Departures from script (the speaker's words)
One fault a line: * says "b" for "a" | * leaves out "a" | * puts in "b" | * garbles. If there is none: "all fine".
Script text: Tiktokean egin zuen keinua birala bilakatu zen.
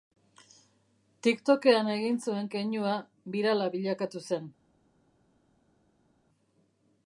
all fine